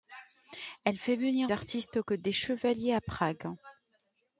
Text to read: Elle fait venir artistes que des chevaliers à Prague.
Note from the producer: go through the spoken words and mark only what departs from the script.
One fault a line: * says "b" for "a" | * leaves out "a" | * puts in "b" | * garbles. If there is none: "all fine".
all fine